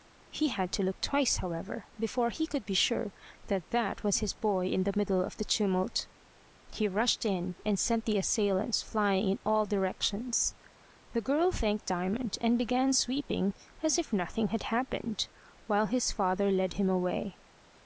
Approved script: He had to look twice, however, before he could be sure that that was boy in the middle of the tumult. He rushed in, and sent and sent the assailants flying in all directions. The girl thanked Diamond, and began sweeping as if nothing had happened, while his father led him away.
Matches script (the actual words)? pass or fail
fail